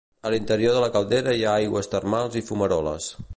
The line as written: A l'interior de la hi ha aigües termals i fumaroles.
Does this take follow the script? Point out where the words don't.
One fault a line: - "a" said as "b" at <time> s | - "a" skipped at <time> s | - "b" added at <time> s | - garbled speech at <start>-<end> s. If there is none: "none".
- "caldera" added at 0.9 s